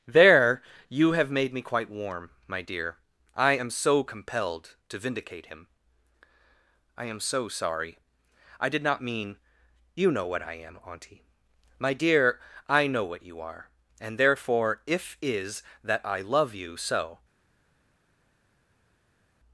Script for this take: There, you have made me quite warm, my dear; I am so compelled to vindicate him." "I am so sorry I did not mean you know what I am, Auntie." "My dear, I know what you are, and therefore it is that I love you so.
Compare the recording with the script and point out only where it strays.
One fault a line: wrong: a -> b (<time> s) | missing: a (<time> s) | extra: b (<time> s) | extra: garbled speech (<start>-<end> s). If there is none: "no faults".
wrong: it -> if (14.9 s)